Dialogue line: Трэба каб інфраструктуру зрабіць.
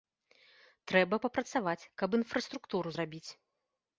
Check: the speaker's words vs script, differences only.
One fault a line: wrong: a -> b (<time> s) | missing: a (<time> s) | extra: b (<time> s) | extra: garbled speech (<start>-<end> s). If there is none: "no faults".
extra: папрацаваць (1.2 s)